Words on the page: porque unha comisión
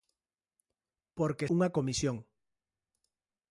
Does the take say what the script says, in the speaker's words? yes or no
yes